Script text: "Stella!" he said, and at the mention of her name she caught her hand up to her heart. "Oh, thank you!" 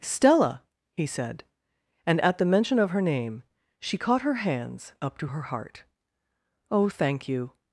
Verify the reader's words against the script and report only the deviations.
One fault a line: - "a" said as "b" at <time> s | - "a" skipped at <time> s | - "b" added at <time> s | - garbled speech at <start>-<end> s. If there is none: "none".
- "hand" said as "hands" at 4.4 s